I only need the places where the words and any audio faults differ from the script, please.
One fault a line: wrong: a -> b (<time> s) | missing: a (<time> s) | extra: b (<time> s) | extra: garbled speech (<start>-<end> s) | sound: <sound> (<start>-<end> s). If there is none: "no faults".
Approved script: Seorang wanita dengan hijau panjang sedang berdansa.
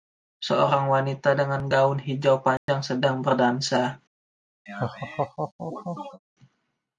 extra: gaun (1.7 s)
sound: dropout (2.6-2.7 s)
sound: laugh (4.7-6.2 s)